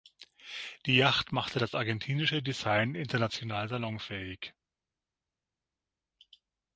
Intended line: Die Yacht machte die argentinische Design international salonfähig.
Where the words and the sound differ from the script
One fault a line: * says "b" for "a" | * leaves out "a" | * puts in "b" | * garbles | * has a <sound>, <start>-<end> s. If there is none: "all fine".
* says "das" for "die"